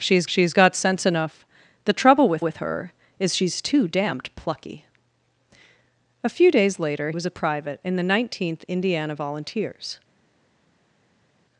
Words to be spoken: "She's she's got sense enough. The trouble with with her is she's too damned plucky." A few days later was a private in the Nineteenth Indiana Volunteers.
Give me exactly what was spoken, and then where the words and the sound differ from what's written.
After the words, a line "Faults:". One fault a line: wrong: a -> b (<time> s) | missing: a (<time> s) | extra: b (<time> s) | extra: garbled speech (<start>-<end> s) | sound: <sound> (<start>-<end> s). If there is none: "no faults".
"She's she's got sense enough. The trouble with with her is she's too damned plucky." A few days later was a private in the Nineteenth Indiana Volunteers.
Faults:
no faults